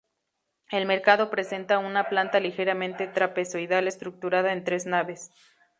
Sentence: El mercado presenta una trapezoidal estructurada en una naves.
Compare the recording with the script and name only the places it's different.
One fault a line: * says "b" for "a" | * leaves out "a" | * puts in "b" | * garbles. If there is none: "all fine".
* puts in "planta ligeramente"
* says "tres" for "una"